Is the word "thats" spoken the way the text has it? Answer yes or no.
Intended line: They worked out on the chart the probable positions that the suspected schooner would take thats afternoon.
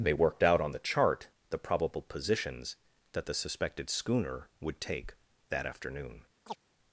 no